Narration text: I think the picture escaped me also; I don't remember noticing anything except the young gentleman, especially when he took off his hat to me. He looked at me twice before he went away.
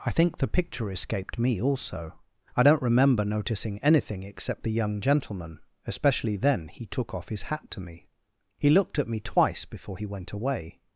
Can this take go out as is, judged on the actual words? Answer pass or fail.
fail